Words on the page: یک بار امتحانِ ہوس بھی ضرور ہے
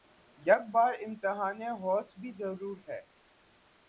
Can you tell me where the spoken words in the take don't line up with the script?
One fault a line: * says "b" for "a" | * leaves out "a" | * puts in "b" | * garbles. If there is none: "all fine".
all fine